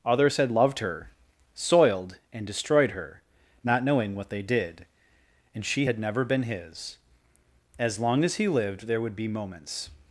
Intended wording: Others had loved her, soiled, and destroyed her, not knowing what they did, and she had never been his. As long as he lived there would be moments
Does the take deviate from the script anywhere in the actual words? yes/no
no